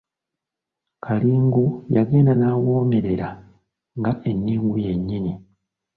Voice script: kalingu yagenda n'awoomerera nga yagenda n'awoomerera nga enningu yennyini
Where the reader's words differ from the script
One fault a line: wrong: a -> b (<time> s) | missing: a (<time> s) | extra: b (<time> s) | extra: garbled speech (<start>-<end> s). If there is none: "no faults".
missing: yagenda n'awoomerera nga (4.1 s)